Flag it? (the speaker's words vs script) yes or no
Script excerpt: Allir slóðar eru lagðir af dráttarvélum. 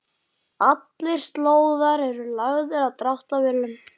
no